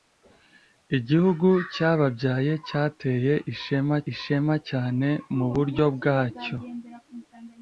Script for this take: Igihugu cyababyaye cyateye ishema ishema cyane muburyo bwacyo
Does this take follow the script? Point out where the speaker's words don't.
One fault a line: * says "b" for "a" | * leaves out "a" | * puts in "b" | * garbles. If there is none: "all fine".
all fine